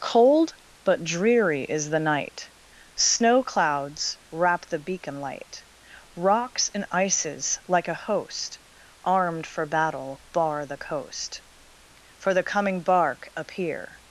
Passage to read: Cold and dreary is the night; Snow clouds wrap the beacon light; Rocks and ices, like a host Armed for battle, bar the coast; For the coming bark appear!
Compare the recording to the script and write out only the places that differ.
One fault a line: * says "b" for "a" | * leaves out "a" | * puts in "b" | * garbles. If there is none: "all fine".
* says "but" for "and"